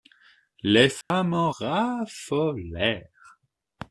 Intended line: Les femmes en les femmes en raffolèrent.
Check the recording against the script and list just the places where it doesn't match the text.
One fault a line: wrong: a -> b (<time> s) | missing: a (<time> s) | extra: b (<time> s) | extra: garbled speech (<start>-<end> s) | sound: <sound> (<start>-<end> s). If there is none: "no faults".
sound: dropout (1.0-1.1 s)
missing: les femmes en (1.5 s)